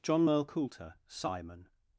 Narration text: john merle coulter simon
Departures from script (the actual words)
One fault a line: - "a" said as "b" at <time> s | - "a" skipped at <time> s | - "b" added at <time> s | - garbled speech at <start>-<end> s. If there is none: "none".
none